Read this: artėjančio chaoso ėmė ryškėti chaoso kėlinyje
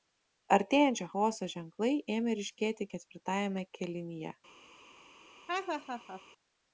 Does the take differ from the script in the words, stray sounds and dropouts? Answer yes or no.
yes